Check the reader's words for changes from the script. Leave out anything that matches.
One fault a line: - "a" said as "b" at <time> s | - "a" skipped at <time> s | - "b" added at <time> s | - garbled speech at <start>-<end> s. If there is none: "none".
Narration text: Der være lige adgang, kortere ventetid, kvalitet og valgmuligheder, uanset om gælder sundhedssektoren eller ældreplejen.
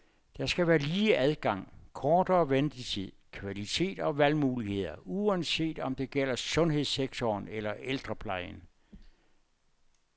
- "skal" added at 0.5 s
- "det" added at 6.0 s